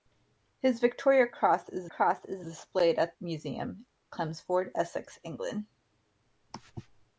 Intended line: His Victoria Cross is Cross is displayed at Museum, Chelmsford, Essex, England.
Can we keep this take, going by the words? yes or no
yes